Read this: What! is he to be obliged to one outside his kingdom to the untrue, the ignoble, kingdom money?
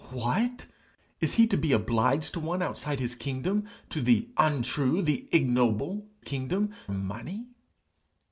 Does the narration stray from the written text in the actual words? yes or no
no